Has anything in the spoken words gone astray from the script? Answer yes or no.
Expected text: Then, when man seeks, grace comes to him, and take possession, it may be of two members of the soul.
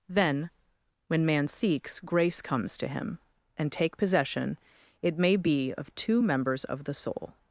no